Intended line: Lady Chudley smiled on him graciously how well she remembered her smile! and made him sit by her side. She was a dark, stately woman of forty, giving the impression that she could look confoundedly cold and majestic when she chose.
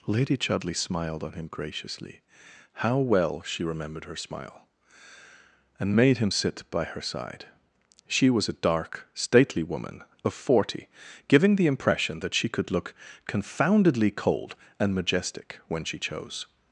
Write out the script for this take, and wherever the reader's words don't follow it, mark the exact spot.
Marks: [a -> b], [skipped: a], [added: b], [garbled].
Lady Chudley smiled on him graciously how well she remembered her smile! and made him sit by her side. She was a dark, stately woman of forty, giving the impression that she could look confoundedly cold and majestic when she chose.